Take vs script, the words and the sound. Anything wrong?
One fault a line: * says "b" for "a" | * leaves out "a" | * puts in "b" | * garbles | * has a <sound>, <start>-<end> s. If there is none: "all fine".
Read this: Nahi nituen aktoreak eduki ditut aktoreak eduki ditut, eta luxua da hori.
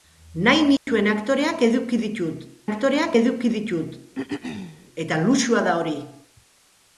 * has a dropout, 0.8-0.9 s
* has a throat clearing, 4.1-4.9 s